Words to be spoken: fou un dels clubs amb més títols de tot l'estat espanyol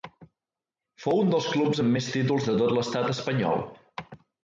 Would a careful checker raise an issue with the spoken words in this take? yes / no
no